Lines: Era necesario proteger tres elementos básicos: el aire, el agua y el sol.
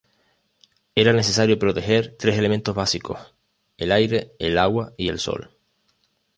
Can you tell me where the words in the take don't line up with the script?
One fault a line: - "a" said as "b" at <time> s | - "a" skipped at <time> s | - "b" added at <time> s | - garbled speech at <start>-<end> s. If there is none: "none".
none